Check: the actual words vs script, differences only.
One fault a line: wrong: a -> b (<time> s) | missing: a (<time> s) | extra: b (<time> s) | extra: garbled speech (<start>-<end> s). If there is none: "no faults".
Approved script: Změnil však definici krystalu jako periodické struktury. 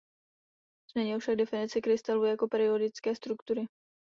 no faults